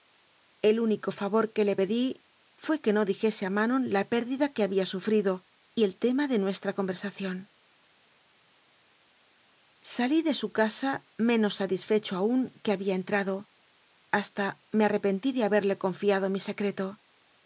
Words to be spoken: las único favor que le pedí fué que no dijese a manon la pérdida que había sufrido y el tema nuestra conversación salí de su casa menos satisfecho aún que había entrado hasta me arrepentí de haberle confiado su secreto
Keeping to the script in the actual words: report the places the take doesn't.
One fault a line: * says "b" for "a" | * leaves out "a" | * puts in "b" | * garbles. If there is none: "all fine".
* says "el" for "las"
* puts in "de"
* says "mi" for "su"